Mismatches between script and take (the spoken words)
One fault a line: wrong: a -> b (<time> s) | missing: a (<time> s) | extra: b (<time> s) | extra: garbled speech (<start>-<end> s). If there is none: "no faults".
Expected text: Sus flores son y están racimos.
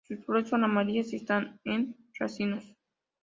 extra: amarillas (0.6 s)
extra: en (1.6 s)